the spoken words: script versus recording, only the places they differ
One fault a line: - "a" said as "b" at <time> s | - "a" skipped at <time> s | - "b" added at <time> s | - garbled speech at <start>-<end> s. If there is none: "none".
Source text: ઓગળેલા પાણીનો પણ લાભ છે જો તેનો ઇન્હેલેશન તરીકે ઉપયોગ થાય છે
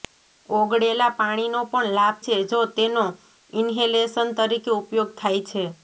none